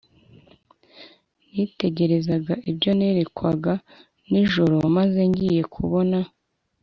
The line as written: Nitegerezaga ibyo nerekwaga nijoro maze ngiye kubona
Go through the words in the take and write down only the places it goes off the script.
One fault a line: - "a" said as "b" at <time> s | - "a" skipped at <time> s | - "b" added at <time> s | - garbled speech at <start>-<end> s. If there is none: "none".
none